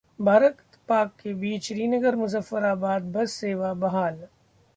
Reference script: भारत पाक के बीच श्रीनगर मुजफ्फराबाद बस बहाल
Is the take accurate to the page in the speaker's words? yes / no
no